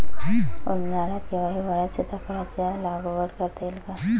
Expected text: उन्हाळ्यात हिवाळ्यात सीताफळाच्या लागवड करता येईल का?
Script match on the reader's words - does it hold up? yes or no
no